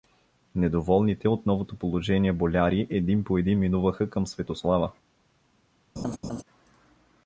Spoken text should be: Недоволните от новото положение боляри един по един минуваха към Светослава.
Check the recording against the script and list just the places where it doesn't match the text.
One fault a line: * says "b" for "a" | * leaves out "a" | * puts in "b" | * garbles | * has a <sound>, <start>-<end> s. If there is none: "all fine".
* has a laugh, 6.0-6.4 s